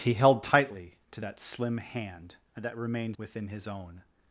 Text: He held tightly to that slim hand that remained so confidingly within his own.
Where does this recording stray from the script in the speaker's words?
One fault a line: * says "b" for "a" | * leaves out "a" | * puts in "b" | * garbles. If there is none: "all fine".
* leaves out "so confidingly"